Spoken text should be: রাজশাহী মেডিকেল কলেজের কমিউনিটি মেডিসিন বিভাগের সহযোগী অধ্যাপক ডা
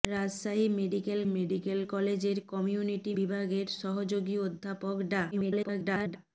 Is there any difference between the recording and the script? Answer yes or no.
yes